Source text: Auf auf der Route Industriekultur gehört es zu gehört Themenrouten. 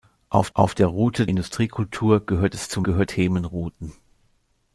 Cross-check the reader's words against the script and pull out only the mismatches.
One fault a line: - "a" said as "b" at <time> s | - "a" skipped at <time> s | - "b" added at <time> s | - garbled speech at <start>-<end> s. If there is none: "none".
none